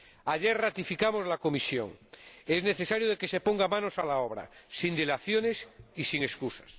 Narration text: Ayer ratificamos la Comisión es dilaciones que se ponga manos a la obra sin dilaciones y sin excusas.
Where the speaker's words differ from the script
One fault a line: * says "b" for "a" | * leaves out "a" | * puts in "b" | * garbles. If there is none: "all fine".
* says "necesario" for "dilaciones"